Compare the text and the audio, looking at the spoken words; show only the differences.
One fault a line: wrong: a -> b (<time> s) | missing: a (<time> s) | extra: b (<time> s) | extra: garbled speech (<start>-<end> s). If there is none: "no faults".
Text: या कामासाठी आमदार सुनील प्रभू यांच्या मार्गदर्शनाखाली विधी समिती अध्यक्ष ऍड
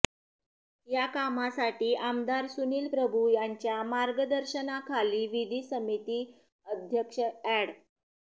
no faults